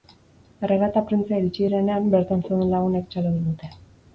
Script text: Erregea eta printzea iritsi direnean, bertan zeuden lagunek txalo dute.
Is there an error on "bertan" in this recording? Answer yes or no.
no